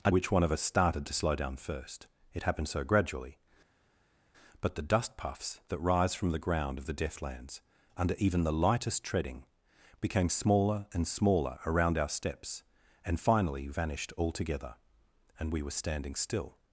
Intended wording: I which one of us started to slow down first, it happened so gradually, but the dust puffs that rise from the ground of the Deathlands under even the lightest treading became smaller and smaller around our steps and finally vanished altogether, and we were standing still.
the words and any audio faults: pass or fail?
pass